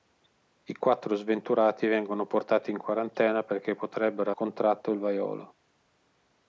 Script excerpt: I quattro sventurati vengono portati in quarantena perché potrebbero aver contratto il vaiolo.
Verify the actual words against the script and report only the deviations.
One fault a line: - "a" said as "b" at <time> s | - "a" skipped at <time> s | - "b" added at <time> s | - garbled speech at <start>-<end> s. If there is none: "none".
- "aver" skipped at 4.3 s